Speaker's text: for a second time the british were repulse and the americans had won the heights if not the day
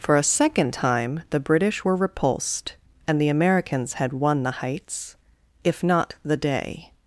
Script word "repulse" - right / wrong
wrong